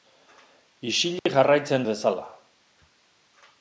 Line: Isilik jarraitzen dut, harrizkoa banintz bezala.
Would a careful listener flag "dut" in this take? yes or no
yes